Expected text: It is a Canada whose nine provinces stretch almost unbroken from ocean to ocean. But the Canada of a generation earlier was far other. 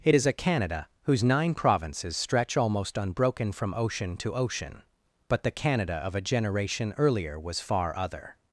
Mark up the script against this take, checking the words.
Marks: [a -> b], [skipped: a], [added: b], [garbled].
It is a Canada whose nine provinces stretch almost unbroken from ocean to ocean. But the Canada of a generation earlier was far other.